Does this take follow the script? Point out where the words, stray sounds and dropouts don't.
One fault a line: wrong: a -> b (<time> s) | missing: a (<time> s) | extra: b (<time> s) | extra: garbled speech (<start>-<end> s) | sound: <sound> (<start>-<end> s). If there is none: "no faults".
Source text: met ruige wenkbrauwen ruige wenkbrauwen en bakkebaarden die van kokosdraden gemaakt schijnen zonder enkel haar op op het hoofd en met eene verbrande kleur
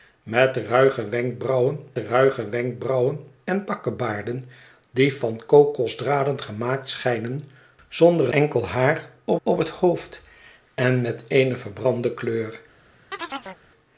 sound: chirp (13.1-13.6 s)